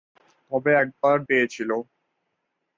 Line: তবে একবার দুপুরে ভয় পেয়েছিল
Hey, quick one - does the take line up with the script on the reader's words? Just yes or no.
no